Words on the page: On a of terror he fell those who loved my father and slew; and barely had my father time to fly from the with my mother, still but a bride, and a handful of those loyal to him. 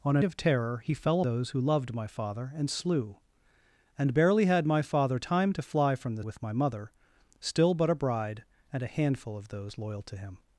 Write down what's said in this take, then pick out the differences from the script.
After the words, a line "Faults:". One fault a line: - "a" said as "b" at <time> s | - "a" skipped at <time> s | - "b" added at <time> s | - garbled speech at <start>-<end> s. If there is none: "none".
On a of terror he fell those who loved my father and slew; and barely had my father time to fly from the with my mother, still but a bride, and a handful of those loyal to him.
Faults:
none